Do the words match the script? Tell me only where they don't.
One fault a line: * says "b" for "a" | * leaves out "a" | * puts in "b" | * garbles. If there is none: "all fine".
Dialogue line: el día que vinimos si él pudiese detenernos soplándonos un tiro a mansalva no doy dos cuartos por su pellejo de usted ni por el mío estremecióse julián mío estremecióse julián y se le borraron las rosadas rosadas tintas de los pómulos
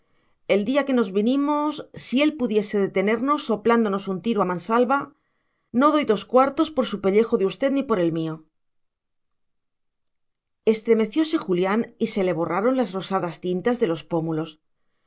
* puts in "nos"
* leaves out "mío estremecióse julián"
* leaves out "rosadas"